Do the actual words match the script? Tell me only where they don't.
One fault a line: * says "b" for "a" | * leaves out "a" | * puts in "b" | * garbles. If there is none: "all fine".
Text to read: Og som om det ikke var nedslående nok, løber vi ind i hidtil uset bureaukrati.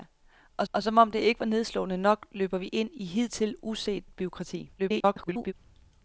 * puts in "og"
* garbles